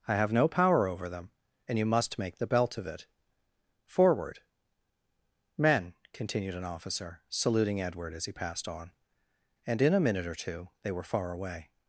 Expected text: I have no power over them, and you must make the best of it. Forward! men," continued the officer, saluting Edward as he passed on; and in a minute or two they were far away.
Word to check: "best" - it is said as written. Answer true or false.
false